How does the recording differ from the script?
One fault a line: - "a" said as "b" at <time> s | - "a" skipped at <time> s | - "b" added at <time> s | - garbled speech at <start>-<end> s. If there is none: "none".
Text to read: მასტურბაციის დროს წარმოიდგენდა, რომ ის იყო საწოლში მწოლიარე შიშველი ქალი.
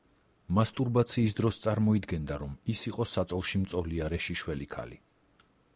none